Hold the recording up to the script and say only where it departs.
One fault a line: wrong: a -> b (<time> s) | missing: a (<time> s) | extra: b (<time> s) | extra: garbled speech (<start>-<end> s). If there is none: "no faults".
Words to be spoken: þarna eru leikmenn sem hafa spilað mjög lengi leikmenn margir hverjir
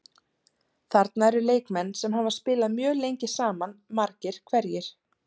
wrong: leikmenn -> saman (3.4 s)